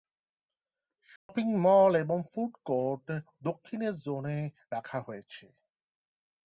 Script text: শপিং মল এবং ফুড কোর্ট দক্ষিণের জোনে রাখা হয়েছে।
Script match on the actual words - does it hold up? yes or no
yes